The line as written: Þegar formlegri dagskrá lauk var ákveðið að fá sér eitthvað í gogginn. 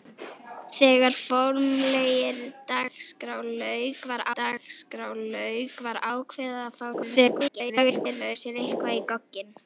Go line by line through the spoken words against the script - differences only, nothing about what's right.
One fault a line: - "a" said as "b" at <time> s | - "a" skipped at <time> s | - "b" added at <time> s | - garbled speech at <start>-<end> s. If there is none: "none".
- "dagskrá lauk var" added at 4.4 s
- garbled speech at 6.9-8.4 s